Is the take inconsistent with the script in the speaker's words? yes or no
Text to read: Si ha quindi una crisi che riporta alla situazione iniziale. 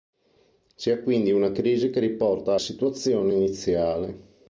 yes